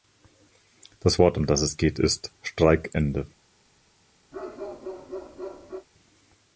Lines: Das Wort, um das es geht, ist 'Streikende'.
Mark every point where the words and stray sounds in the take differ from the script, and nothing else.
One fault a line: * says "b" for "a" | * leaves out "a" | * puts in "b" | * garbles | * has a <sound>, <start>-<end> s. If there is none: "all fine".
* has a bark, 4.3-5.9 s